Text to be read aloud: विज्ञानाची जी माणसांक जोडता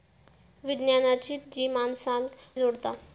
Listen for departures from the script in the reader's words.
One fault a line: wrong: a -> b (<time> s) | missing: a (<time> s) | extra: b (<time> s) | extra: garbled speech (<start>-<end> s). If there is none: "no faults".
no faults